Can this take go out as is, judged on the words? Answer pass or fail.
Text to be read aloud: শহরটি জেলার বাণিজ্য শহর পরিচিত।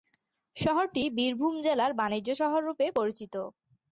fail